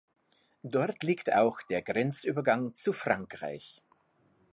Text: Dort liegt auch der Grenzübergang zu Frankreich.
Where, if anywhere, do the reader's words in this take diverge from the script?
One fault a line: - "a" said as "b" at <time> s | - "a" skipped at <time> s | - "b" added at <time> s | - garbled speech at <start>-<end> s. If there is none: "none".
none